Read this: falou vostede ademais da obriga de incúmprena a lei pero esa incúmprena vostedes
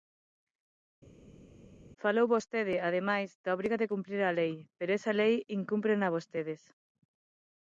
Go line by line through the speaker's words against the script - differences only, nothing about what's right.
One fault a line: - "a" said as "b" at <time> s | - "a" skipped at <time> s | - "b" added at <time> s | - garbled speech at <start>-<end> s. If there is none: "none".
- "incúmprena" said as "cumprir" at 3.9 s
- "lei" added at 5.2 s